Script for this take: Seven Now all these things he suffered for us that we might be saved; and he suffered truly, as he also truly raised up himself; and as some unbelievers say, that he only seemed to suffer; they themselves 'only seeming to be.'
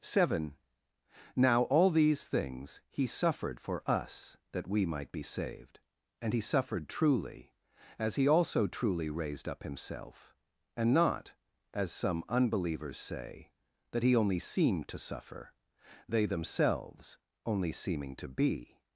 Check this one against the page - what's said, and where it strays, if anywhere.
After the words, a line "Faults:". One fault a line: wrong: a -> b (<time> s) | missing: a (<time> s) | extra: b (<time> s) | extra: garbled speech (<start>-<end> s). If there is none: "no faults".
Seven Now all these things he suffered for us that we might be saved; and he suffered truly, as he also truly raised up himself; and not, as some unbelievers say, that he only seemed to suffer; they themselves 'only seeming to be.'
Faults:
extra: not (10.9 s)